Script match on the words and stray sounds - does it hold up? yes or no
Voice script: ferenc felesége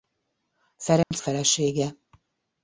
no